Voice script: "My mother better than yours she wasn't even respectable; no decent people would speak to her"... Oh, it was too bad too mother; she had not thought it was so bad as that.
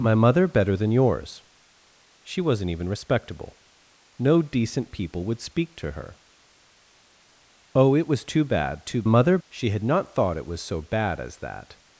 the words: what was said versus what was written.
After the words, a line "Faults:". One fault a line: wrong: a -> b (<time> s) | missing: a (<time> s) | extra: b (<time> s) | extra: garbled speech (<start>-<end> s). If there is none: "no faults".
"My mother better than yours she wasn't even respectable; no decent people would speak to her"... Oh, it was too bad too mother; she had not thought it was so bad as that.
Faults:
no faults